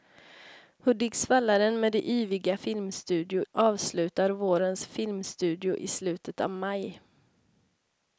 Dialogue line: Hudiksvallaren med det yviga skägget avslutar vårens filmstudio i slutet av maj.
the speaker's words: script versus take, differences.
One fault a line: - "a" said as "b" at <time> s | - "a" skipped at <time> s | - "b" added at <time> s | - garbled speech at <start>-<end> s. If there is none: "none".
- "skägget" said as "filmstudio" at 2.5 s